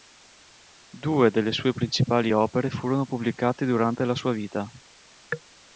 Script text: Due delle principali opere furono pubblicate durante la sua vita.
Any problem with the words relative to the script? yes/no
yes